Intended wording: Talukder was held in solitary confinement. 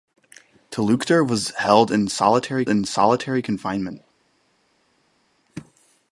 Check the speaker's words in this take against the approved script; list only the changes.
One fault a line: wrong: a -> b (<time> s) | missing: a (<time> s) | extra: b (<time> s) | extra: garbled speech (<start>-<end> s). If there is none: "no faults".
extra: in solitary (2.7 s)